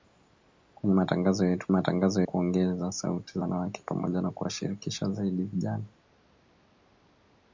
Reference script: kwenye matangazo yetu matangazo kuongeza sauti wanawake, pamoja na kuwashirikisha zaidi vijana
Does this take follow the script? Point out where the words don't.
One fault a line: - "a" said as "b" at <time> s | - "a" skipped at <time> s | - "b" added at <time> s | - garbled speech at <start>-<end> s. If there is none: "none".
none